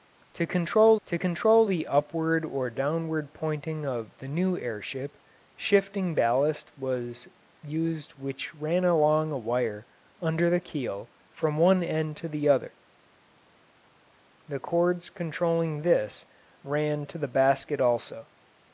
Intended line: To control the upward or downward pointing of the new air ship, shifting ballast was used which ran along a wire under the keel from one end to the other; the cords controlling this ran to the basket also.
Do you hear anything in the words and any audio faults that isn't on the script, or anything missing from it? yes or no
yes